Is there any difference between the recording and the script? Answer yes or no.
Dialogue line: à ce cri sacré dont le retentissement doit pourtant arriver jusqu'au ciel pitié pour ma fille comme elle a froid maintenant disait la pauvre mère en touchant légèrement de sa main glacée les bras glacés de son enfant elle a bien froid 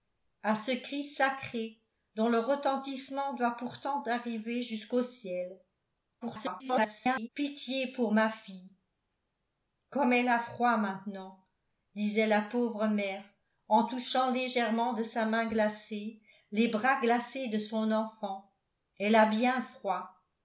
yes